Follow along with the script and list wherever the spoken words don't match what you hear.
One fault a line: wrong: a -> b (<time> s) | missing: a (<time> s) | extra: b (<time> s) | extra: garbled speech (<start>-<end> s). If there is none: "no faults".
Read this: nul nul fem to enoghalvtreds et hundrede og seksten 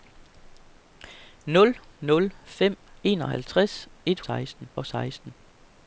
missing: to (2.8 s)
wrong: hundrede -> seksten (4.2 s)